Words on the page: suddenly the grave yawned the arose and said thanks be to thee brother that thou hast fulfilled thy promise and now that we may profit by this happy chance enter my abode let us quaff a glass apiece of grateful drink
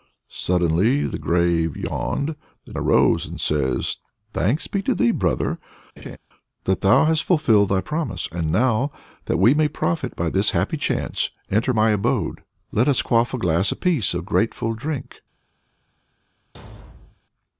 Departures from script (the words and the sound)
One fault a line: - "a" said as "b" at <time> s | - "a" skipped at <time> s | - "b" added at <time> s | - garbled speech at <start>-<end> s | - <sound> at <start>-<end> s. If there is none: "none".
- laugh at 6.0-6.2 s
- thud at 16.5-17.2 s